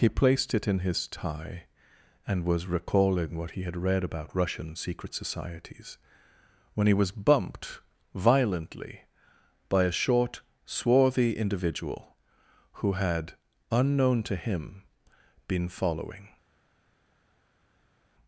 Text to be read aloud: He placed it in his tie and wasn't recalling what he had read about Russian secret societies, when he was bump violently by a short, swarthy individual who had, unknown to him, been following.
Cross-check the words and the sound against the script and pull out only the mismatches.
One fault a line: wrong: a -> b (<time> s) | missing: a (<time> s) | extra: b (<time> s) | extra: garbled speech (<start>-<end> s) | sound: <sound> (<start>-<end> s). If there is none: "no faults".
wrong: wasn't -> was (2.4 s)
wrong: bump -> bumped (7.1 s)